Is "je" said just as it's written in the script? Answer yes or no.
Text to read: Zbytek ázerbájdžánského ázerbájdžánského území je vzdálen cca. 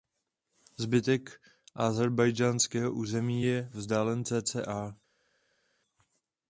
yes